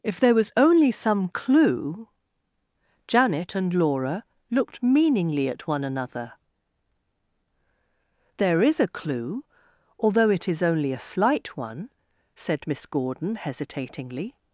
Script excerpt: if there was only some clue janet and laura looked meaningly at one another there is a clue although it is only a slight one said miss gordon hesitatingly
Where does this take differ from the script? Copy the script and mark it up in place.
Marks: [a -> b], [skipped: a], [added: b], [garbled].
if there was only some clue janet and laura looked meaningly at one another there is a clue although it is only a slight one said miss gordon hesitatingly